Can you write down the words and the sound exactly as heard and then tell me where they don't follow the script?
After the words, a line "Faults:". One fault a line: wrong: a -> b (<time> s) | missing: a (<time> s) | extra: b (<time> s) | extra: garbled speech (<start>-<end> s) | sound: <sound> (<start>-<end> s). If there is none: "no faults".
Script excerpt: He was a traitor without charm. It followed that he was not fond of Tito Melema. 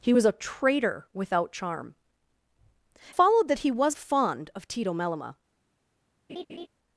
He was a traitor without charm. Followed that he was fond of Tito Melema.
Faults:
missing: It (2.0 s)
missing: not (4.0 s)
sound: laugh (6.3-6.7 s)